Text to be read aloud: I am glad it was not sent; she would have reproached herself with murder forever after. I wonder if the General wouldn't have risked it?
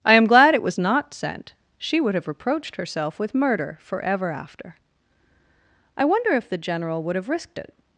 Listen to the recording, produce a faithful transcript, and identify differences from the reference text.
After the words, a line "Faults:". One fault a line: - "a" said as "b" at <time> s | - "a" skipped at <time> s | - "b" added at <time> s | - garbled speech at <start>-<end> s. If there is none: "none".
I am glad it was not sent; she would have reproached herself with murder forever after. I wonder if the General would have risked it?
Faults:
- "wouldn't" said as "would" at 7.0 s